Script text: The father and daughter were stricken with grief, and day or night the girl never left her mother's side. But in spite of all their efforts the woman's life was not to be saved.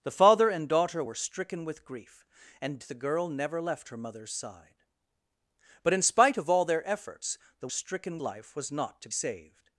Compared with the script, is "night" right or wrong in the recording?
wrong